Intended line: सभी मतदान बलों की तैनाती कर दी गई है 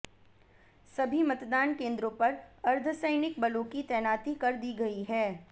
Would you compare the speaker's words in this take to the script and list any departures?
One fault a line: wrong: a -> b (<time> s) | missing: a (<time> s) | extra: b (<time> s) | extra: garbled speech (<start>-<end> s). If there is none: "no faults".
extra: केंद्रों पर अर्धसैनिक (1.8 s)